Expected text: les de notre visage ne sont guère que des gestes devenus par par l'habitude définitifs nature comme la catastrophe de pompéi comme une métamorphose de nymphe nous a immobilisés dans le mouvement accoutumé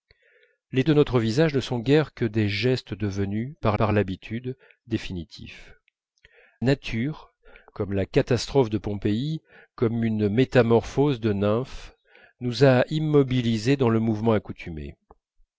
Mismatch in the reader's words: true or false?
false